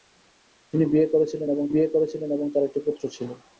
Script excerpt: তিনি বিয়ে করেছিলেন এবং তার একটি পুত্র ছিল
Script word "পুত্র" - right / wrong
right